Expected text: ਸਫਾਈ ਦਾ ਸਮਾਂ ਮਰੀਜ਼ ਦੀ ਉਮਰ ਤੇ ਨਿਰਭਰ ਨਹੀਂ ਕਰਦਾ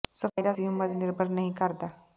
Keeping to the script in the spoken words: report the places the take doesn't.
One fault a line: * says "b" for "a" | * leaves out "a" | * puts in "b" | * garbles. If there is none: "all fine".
* leaves out "ਸਮਾਂ ਮਰੀਜ਼"